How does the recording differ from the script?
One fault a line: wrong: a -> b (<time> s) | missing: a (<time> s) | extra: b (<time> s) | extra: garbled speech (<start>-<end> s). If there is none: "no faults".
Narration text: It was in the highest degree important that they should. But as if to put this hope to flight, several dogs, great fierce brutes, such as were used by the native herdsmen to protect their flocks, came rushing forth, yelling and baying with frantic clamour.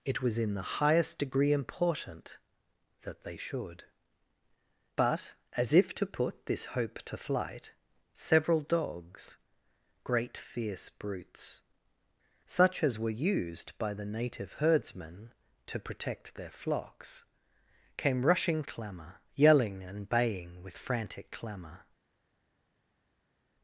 wrong: forth -> clamour (18.7 s)